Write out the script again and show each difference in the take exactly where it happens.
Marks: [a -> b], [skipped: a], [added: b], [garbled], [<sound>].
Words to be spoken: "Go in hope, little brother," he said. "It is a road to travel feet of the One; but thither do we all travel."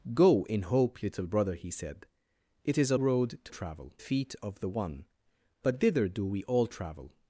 "Go in hope, little brother," he said. "It is a road to travel feet of the One; but thither do we all travel."